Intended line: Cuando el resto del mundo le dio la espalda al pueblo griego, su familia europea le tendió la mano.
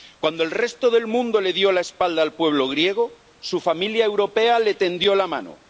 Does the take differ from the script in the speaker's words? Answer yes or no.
no